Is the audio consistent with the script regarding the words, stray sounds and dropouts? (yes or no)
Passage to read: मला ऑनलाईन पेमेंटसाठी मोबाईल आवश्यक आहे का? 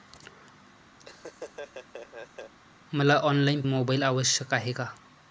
no